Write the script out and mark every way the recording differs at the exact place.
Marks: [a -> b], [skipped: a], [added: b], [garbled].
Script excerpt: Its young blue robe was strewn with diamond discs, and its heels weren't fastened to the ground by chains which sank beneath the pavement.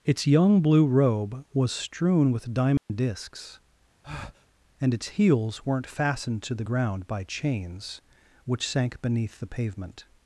Its young blue robe was strewn with diamond discs, and its heels weren't fastened to the ground by chains which sank beneath the pavement.